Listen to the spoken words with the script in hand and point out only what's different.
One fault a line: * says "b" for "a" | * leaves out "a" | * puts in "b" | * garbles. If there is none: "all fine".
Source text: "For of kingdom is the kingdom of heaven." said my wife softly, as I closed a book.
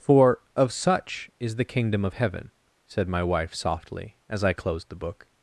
* says "such" for "kingdom"
* says "the" for "a"